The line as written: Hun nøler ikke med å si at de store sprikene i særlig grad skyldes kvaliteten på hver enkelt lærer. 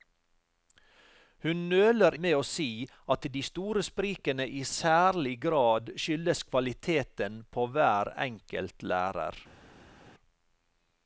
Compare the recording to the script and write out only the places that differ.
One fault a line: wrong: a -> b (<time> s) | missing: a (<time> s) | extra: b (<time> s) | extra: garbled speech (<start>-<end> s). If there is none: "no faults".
missing: ikke (2.2 s)